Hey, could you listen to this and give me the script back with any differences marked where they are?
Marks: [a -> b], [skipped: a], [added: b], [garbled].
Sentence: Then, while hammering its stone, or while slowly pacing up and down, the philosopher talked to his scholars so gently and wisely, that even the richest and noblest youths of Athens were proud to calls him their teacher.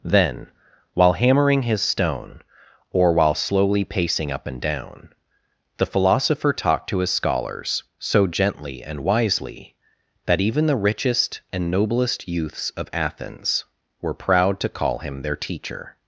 Then, while hammering [its -> his] stone, or while slowly pacing up and down, the philosopher talked to his scholars so gently and wisely, that even the richest and noblest youths of Athens were proud to [calls -> call] him their teacher.